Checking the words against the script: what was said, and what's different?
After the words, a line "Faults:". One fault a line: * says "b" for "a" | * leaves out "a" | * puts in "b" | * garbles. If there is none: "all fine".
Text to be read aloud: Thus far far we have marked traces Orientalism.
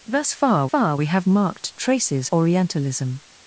Thus far far we have marked traces Orientalism.
Faults:
all fine